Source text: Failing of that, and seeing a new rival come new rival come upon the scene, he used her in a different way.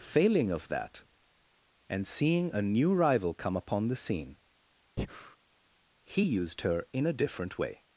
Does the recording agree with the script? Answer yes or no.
no